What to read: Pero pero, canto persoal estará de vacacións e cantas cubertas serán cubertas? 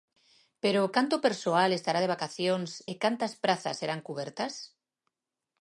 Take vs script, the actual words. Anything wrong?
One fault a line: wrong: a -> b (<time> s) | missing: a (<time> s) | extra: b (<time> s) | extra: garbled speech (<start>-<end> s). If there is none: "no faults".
missing: pero (0.8 s)
wrong: cubertas -> prazas (3.4 s)